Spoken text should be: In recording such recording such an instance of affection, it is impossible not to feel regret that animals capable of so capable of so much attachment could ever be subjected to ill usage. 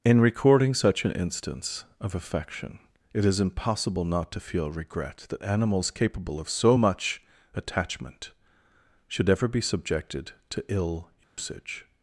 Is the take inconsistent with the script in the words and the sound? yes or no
yes